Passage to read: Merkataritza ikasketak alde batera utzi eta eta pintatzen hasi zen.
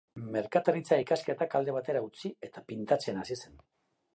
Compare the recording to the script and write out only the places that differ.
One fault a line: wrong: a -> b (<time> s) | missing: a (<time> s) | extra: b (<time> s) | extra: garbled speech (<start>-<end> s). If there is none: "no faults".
missing: eta (2.6 s)